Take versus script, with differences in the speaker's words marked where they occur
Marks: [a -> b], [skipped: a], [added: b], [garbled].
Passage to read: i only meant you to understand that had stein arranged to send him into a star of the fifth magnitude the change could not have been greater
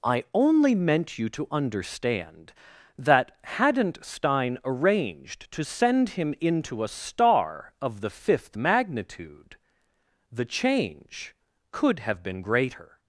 i only meant you to understand that [had -> hadn't] stein arranged to send him into a star of the fifth magnitude the change could [skipped: not] have been greater